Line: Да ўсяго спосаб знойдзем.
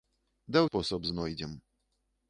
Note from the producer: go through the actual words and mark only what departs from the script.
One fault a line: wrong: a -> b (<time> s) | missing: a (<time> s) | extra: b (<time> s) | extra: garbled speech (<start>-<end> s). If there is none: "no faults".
missing: ўсяго (0.6 s)